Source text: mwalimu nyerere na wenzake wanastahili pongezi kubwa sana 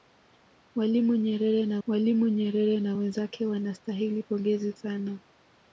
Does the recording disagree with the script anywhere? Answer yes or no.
yes